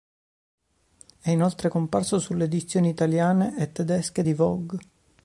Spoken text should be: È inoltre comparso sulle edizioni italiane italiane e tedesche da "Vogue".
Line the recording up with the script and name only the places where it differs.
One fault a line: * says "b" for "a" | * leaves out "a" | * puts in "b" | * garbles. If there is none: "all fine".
* leaves out "italiane"
* says "di" for "da"